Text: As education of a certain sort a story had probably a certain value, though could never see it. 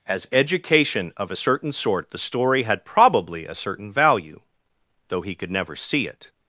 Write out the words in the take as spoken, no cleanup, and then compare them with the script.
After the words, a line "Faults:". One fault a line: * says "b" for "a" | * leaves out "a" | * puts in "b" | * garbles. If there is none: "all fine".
As education of a certain sort the story had probably a certain value, though he could never see it.
Faults:
* says "the" for "a"
* puts in "he"